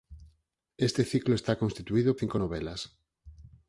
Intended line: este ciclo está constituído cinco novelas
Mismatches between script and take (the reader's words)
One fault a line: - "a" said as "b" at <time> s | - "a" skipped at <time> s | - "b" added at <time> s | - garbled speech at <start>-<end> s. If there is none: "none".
none